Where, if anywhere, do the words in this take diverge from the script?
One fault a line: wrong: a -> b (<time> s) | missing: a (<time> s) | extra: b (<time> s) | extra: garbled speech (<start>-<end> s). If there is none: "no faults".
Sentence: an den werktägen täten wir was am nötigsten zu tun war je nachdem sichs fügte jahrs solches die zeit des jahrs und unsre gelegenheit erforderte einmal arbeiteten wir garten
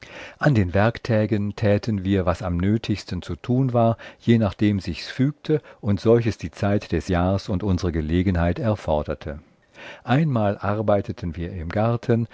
wrong: jahrs -> und (5.8 s)
extra: im (11.5 s)